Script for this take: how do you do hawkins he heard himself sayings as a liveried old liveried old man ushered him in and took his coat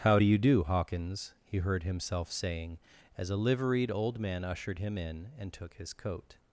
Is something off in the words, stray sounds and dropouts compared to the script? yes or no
yes